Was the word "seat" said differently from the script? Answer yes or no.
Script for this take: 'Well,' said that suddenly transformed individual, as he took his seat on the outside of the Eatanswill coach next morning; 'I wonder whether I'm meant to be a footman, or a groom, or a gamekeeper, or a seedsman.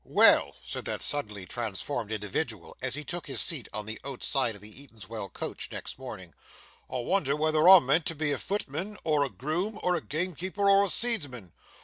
no